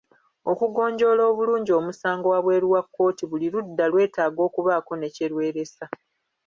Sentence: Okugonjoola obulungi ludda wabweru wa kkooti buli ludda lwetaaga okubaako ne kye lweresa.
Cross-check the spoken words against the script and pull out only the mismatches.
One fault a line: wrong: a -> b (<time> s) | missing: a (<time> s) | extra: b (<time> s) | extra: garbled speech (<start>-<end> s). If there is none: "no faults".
wrong: ludda -> omusango (1.8 s)